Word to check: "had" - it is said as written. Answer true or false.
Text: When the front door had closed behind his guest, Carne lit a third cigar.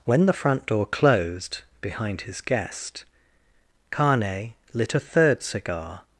false